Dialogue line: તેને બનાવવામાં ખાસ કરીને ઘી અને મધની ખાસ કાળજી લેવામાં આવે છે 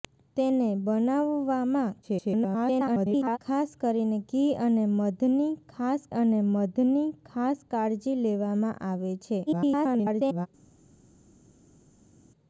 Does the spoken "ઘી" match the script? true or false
true